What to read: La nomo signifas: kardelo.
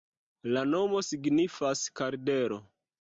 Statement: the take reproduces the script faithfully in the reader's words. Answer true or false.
true